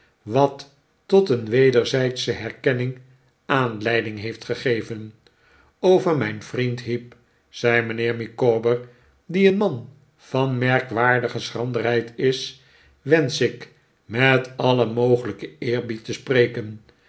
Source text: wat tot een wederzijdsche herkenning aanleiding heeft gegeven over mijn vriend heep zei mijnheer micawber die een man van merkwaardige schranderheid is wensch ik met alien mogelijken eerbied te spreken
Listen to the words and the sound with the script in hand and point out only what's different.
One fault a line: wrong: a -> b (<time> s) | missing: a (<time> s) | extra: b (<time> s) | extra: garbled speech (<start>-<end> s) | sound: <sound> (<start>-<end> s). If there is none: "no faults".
no faults